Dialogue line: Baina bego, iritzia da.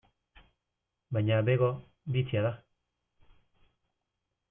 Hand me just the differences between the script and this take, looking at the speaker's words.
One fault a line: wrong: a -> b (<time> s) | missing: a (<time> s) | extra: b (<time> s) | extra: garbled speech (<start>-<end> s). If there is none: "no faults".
no faults